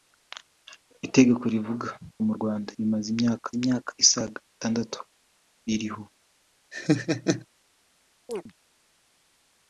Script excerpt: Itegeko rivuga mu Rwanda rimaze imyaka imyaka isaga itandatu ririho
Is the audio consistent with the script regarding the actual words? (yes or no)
yes